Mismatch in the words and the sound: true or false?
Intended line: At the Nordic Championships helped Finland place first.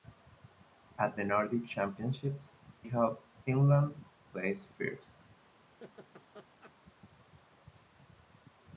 true